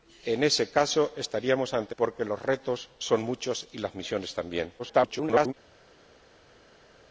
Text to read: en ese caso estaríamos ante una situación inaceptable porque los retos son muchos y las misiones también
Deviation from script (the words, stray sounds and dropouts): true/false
true